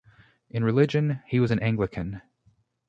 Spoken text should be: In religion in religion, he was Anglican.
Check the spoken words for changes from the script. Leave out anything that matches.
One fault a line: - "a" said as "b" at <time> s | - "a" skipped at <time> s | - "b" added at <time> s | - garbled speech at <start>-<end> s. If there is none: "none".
- "in religion" skipped at 1.2 s
- "an" added at 1.5 s